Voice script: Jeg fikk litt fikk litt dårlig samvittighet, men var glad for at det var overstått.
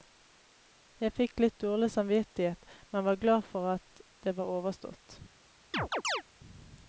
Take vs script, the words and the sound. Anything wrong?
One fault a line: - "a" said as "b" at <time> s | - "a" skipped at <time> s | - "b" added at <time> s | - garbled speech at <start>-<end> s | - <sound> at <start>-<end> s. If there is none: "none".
- "fikk litt" skipped at 1.6 s
- chirp at 5.7-6.2 s